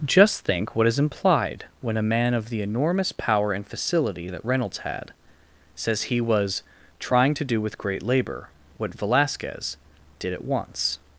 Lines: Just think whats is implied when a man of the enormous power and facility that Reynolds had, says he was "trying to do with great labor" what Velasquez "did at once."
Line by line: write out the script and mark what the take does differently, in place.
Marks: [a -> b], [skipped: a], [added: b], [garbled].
Just think [whats -> what] is implied when a man of the enormous power and facility that Reynolds had, says he was "trying to do with great labor" what Velasquez "did at once."